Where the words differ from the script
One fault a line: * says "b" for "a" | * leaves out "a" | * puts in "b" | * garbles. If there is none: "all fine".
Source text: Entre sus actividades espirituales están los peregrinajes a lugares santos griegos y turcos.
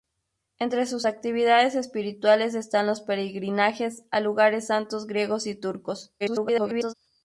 * garbles